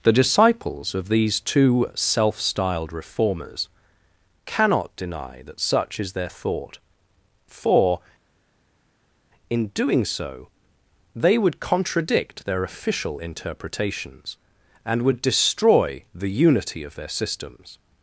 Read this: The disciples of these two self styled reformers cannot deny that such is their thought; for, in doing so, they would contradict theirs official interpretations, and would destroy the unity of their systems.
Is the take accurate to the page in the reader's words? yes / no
no